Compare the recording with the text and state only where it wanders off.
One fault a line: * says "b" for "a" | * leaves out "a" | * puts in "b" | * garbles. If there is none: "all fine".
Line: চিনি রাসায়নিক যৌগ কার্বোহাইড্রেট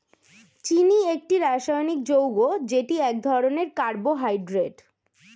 * puts in "একটি"
* puts in "যেটি এক ধরনের"